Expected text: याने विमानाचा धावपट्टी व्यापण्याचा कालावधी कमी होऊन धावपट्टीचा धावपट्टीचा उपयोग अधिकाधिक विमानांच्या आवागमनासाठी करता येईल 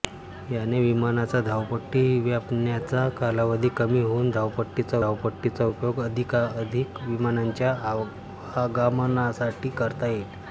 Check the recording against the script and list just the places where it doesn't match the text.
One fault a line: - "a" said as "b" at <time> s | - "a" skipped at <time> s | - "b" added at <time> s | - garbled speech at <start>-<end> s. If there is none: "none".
none